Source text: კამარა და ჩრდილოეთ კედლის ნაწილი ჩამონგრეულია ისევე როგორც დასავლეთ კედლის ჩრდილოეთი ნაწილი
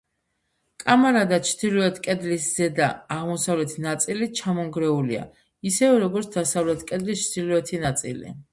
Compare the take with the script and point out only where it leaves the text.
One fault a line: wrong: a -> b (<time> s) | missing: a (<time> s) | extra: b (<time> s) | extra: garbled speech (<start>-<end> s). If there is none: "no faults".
extra: ზედა აღმოსავლეთი (2.6 s)